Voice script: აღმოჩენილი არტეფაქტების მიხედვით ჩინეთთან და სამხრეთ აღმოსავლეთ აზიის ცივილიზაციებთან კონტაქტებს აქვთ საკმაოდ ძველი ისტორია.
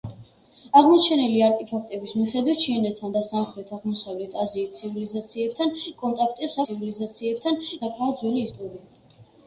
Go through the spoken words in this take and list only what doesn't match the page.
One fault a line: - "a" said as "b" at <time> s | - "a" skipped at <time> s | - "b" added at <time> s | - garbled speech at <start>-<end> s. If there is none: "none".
- "აქვთ" said as "ცივილიზაციებთან" at 6.6 s